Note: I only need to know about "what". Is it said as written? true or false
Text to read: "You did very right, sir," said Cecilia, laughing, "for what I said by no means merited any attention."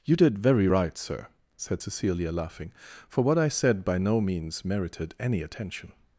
true